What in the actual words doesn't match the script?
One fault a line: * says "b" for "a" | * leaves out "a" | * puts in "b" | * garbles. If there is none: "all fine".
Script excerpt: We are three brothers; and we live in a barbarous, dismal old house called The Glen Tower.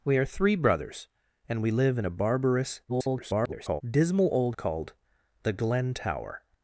* garbles
* leaves out "house"